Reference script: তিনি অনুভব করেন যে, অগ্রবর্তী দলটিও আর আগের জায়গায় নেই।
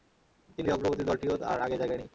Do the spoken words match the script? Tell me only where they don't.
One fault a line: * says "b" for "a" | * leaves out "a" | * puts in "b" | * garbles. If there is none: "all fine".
* leaves out "অনুভব করেন"